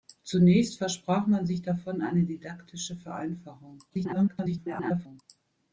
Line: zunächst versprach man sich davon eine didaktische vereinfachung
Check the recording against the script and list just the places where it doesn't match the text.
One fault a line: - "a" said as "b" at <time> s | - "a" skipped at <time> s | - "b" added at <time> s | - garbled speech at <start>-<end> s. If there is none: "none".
- garbled speech at 3.9-5.2 s